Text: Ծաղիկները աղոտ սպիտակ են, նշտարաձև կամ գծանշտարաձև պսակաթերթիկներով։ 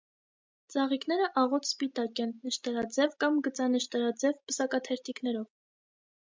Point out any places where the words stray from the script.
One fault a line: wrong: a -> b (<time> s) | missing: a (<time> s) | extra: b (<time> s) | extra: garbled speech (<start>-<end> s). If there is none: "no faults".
no faults